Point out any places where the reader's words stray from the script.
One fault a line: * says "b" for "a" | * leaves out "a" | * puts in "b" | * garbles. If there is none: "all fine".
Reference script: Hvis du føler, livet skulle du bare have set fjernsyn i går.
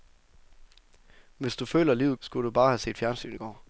all fine